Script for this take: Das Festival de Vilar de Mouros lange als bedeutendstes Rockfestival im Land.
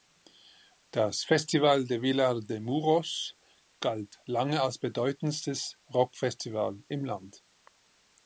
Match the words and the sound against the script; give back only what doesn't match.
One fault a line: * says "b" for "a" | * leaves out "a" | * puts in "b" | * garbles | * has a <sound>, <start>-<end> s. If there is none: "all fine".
* puts in "galt"